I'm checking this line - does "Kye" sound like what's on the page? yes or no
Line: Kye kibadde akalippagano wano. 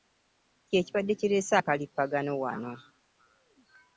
yes